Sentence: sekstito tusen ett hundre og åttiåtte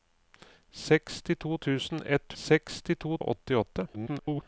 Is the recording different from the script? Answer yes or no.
yes